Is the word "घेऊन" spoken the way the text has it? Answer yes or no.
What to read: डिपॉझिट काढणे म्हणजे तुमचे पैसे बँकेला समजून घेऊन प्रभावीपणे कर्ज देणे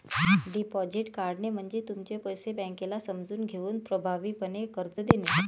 yes